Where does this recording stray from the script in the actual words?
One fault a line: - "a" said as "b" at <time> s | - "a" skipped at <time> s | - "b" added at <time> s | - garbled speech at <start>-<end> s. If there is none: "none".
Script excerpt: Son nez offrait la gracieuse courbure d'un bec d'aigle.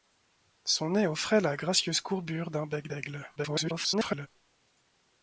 - garbled speech at 3.4-4.3 s